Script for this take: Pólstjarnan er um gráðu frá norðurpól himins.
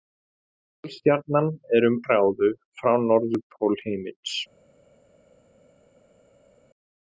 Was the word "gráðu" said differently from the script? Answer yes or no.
no